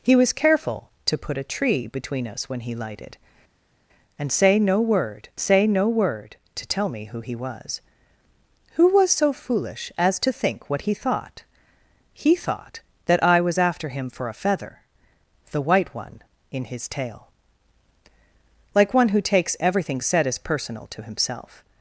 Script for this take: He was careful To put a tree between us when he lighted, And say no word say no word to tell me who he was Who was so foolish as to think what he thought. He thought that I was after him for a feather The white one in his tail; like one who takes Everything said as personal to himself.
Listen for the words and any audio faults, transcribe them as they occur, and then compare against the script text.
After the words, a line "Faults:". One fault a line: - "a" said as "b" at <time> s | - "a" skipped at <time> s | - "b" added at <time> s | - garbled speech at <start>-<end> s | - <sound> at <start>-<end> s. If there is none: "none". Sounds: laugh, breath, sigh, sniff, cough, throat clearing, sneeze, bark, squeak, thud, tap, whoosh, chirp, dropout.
He was careful To put a tree between us when he lighted, And say no word say no word to tell me who he was Who was so foolish as to think what he thought. He thought that I was after him for a feather The white one in his tail; like one who takes Everything said as personal to himself.
Faults:
none